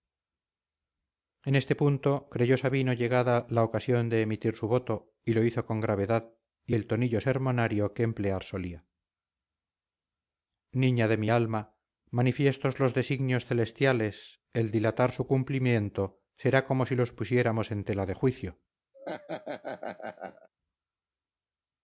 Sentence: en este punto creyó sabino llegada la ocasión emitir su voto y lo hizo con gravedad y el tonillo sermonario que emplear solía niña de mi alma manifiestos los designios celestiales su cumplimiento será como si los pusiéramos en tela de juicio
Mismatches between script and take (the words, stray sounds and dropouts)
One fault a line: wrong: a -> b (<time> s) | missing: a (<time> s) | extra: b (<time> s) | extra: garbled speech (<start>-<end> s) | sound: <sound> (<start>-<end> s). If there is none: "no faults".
extra: de (4.1 s)
extra: el dilatar (14.5 s)
sound: laugh (18.9-20.5 s)